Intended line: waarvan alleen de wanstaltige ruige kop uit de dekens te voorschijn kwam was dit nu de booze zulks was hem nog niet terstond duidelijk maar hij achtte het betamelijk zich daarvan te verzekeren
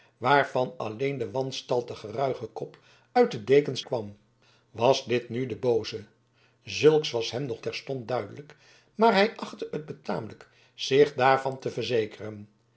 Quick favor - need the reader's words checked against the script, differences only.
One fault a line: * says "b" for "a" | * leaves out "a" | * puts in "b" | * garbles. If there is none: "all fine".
* leaves out "te voorschijn"
* leaves out "niet"